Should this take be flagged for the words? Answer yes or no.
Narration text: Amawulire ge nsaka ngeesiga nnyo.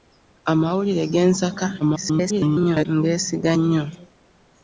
yes